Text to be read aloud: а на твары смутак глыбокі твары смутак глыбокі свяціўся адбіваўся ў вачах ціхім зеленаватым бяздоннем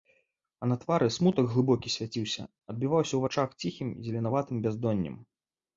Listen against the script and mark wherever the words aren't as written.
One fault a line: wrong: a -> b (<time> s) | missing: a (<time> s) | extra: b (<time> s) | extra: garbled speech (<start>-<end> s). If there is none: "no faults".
missing: твары смутак глыбокі (1.9 s)